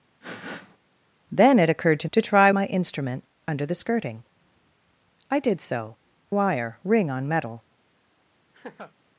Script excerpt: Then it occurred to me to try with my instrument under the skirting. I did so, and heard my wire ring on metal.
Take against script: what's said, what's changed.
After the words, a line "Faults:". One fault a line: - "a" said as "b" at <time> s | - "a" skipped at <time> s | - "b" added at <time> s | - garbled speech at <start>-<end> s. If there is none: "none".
Then it occurred to to try my instrument under the skirting. I did so, wire ring on metal.
Faults:
- "me" skipped at 2.1 s
- "with" skipped at 2.5 s
- "and heard my" skipped at 5.9 s